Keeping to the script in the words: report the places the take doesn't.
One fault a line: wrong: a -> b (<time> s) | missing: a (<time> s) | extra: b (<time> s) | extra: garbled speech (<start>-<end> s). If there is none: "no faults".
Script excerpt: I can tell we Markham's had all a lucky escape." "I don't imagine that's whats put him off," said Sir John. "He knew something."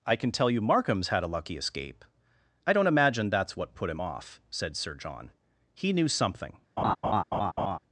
wrong: we -> you (0.5 s)
missing: all (1.2 s)
wrong: whats -> what (3.5 s)